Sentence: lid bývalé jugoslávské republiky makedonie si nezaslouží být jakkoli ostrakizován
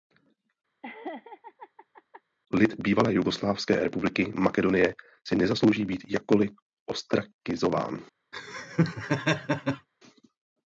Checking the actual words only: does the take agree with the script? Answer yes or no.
yes